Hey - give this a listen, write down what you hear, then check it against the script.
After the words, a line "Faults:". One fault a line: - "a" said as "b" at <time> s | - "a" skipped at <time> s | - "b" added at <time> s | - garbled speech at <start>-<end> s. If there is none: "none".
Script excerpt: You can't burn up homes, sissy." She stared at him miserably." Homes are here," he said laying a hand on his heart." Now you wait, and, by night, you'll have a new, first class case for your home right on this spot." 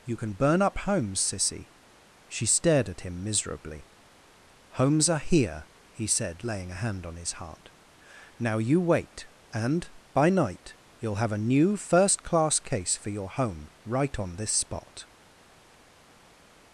You can burn up homes, sissy." She stared at him miserably." Homes are here," he said laying a hand on his heart." Now you wait, and, by night, you'll have a new, first class case for your home right on this spot."
Faults:
- "can't" said as "can" at 0.1 s